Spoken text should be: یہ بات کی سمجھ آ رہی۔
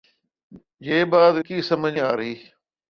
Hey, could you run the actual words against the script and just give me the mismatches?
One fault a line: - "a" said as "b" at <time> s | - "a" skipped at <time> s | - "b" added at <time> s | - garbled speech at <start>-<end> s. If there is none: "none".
none